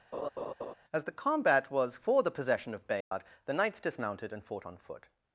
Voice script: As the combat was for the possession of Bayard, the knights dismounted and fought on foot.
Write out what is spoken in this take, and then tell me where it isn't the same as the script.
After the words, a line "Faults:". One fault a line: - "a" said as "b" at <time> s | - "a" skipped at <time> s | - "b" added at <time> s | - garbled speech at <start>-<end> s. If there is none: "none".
As the combat was for the possession of Bayard, the knights dismounted and fought on foot.
Faults:
none